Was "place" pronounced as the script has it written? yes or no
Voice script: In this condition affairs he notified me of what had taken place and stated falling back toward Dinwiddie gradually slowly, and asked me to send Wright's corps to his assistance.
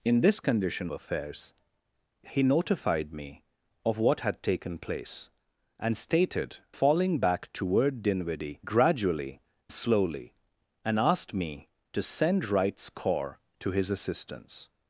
yes